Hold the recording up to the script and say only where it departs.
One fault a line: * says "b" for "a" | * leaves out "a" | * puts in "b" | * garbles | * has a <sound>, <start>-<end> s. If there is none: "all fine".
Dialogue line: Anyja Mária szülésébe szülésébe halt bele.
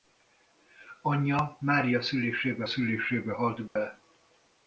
* has a dropout, 3.7-3.8 s